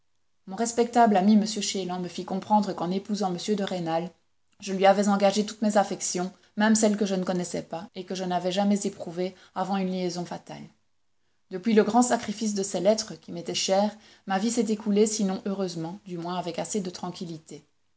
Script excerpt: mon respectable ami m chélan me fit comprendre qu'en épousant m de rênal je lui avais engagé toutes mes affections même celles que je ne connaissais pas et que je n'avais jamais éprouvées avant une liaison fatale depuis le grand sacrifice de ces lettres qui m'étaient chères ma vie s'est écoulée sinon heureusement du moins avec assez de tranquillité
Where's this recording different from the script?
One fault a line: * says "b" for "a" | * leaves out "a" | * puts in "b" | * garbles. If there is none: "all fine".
all fine